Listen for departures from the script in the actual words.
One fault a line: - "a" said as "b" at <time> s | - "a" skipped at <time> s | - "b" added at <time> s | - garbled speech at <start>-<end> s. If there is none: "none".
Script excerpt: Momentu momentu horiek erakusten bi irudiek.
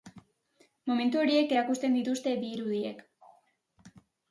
- "momentu" skipped at 1.2 s
- "dituzte" added at 2.0 s